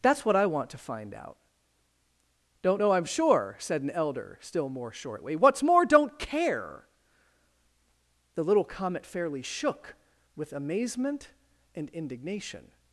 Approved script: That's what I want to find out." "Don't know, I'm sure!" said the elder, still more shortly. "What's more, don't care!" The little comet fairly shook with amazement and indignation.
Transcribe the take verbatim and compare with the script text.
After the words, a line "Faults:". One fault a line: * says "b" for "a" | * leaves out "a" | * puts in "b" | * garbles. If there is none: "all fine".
That's what I want to find out." "Don't know, I'm sure!" said an elder, still more shortly. "What's more, don't care!" The little comet fairly shook with amazement and indignation.
Faults:
* says "an" for "the"